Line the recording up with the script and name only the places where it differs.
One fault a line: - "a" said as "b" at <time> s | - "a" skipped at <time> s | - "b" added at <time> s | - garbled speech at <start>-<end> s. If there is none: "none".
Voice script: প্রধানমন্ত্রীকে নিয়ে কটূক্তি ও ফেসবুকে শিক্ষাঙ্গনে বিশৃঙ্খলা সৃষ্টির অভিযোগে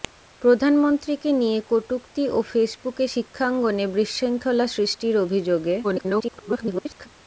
- garbled speech at 5.8-7.1 s